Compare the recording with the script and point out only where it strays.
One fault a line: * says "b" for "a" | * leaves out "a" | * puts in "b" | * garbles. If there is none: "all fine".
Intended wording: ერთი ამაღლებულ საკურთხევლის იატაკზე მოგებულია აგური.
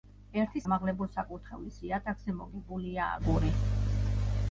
all fine